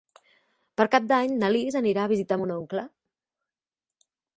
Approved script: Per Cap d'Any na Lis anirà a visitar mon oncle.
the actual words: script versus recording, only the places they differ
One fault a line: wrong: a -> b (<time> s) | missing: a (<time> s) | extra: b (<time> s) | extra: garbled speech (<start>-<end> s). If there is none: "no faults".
no faults